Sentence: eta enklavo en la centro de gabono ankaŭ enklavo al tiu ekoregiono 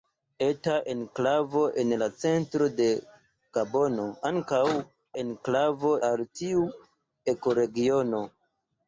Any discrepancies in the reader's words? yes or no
no